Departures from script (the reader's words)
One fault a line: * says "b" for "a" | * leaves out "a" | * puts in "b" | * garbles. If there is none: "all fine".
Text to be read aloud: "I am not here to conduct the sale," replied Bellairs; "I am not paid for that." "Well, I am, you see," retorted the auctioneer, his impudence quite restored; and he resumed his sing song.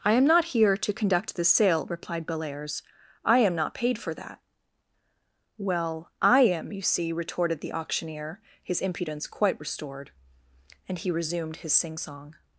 all fine